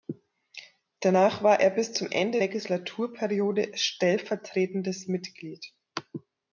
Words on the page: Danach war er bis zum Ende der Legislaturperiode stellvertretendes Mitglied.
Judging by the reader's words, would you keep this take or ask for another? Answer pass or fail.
fail